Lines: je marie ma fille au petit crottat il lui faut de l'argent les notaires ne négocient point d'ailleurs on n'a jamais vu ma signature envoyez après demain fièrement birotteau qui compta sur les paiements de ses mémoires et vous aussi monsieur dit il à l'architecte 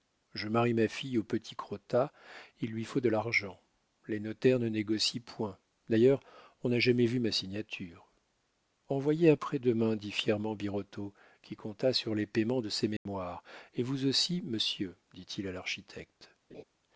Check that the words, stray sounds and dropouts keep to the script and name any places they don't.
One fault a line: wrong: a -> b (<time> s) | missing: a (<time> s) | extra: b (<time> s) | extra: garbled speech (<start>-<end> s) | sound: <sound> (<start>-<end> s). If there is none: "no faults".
extra: dit (9.9 s)
sound: dropout (13.0-13.1 s)
sound: laugh (16.5-16.6 s)